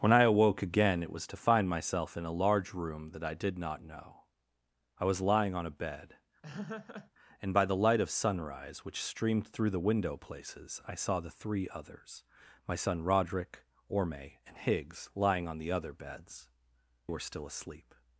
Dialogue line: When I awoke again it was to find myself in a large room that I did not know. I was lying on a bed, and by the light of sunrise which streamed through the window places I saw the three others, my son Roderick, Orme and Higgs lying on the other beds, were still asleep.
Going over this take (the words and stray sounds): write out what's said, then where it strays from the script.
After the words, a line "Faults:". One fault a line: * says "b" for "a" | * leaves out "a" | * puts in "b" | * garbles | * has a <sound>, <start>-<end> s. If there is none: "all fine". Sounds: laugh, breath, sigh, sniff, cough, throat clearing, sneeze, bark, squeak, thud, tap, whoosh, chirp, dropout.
When I awoke again it was to find myself in a large room that I did not know. I was lying on a bed, and by the light of sunrise which streamed through the window places I saw the three others, my son Roderick, Orme and Higgs lying on the other beds, were still asleep.
Faults:
* has a laugh, 6.4-7.1 s